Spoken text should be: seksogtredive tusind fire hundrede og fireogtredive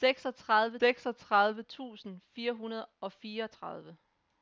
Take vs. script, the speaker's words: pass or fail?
fail